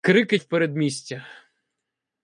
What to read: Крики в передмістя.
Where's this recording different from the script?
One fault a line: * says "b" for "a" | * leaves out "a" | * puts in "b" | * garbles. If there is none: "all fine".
all fine